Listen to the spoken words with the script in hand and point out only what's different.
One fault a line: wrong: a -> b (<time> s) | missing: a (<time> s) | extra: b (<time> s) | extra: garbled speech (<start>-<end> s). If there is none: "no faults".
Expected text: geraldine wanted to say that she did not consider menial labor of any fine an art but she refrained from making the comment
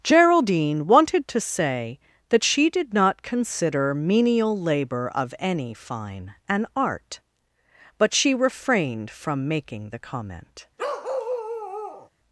no faults